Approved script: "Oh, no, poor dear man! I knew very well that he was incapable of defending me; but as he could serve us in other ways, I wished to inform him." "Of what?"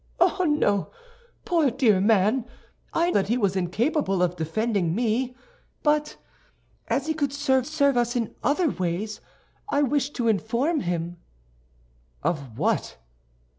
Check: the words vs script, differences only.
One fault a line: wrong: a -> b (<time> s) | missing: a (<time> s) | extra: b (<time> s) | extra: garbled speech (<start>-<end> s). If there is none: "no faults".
missing: knew very well (3.1 s)
extra: serve (7.6 s)